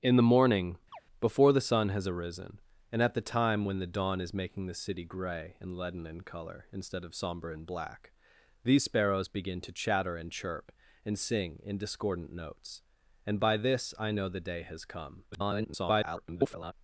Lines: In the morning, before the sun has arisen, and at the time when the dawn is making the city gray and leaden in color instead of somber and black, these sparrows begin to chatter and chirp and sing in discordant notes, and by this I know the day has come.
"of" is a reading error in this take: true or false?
false